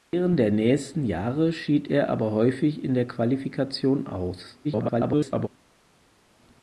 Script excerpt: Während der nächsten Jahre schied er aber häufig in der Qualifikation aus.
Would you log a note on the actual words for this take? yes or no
yes